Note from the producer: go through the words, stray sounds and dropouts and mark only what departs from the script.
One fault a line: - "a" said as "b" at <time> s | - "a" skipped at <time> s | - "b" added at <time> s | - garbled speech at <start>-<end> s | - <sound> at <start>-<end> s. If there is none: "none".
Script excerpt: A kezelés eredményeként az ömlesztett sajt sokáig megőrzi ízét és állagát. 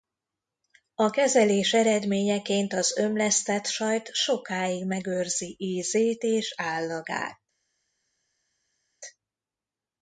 none